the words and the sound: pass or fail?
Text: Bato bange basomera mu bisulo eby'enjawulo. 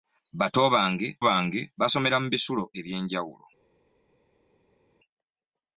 fail